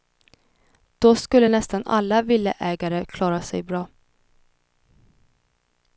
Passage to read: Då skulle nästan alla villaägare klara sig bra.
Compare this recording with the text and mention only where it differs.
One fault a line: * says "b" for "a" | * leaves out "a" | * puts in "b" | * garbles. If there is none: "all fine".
all fine